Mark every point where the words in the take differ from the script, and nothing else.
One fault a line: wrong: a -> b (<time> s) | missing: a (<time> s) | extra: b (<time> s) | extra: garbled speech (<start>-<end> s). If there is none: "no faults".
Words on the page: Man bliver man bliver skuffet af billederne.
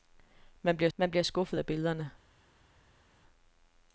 no faults